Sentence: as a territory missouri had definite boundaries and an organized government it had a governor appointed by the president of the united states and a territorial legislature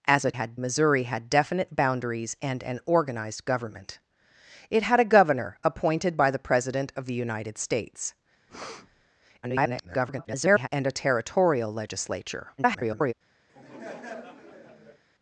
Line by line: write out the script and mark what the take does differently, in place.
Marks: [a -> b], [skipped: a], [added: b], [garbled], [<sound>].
as a [territory -> had] missouri had definite boundaries and an organized government it had a governor appointed by the president of the united states [breath] [garbled] and a territorial legislature [garbled] [laugh]